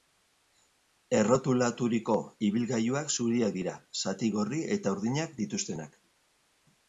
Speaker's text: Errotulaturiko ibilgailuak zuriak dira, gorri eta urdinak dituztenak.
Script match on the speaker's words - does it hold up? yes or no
no